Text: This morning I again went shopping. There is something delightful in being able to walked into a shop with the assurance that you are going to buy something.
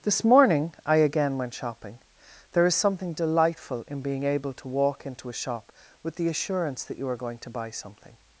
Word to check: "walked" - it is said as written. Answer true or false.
false